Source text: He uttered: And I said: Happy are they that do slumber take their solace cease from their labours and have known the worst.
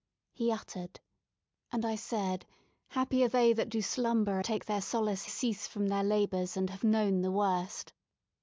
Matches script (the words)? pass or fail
pass